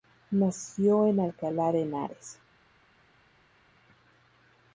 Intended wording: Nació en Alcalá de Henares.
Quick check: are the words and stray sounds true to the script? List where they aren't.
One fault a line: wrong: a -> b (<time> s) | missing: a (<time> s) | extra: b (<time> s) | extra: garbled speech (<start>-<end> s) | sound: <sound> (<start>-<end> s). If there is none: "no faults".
no faults